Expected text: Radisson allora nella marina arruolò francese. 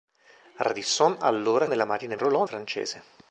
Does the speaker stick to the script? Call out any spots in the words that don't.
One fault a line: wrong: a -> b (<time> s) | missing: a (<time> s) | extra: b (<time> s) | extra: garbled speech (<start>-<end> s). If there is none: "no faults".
no faults